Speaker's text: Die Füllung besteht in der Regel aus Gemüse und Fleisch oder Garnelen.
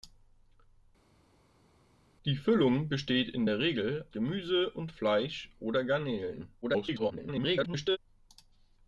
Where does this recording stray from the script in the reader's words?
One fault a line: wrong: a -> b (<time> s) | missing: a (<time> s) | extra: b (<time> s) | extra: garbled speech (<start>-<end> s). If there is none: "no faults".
missing: aus (4.1 s)
extra: garbled speech (6.6-8.0 s)